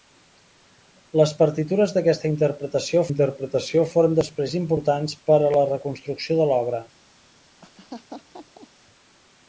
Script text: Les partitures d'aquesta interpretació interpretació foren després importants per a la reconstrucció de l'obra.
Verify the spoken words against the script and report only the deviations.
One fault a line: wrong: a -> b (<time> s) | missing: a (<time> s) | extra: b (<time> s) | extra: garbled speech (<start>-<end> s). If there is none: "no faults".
no faults